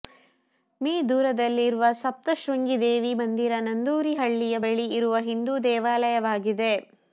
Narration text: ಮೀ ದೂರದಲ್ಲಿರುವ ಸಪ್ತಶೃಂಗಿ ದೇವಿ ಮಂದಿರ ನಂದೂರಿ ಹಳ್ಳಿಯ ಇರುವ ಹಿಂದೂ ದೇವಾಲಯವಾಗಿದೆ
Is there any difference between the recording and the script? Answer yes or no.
yes